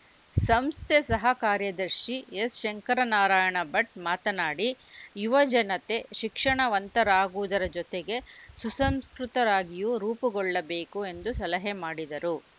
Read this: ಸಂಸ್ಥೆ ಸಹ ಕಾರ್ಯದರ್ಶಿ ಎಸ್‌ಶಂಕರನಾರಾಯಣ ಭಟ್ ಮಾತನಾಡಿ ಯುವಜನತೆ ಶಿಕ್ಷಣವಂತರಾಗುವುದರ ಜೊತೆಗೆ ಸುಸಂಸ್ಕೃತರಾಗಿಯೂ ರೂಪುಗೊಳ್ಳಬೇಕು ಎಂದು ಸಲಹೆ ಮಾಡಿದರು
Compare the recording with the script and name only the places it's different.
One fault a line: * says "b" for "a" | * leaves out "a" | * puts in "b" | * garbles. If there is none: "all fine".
all fine